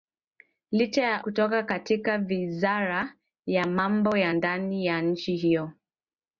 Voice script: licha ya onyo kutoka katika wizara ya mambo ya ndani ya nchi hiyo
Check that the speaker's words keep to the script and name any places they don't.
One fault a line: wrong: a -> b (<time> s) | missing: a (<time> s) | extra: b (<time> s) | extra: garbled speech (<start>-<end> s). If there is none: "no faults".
missing: onyo (1.2 s)